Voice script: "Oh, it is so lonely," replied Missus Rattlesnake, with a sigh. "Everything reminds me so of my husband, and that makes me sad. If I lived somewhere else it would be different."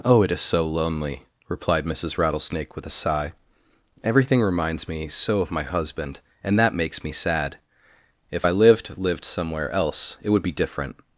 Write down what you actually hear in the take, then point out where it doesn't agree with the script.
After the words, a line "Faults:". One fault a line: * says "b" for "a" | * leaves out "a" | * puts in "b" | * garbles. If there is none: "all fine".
"Oh, it is so lonely," replied Missus Rattlesnake, with a sigh. "Everything reminds me so of my husband, and that makes me sad. If I lived lived somewhere else it would be different."
Faults:
* puts in "lived"